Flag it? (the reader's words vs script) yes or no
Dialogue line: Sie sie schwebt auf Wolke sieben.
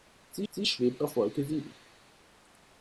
no